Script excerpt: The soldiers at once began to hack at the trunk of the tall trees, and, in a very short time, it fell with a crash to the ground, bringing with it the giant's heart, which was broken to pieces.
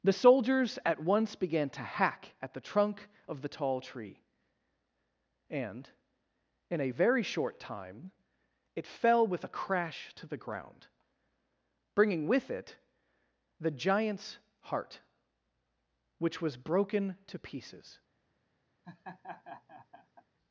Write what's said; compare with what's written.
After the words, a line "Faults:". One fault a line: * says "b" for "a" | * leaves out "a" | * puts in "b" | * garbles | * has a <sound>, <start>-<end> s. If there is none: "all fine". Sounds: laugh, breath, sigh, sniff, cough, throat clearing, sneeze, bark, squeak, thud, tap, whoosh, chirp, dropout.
The soldiers at once began to hack at the trunk of the tall tree, and, in a very short time, it fell with a crash to the ground, bringing with it the giant's heart, which was broken to pieces.
Faults:
* says "tree" for "trees"
* has a laugh, 18.8-20.2 s